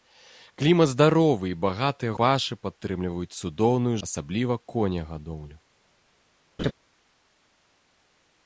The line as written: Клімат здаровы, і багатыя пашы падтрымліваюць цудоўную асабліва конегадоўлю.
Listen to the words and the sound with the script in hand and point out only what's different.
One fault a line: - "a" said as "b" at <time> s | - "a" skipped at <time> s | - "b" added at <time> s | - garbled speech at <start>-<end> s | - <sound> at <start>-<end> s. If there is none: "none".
- laugh at 6.6-6.7 s